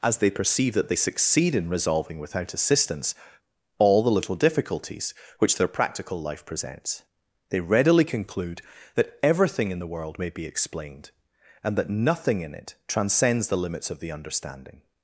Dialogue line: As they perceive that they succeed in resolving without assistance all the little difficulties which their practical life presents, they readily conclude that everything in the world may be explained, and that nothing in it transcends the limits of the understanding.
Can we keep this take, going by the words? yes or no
yes